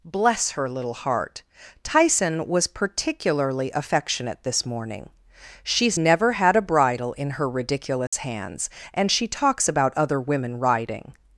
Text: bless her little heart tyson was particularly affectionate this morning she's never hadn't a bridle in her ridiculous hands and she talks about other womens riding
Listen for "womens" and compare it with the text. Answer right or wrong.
wrong